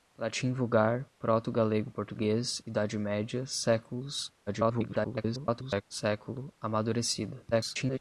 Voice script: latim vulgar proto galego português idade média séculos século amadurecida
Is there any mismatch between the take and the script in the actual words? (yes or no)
yes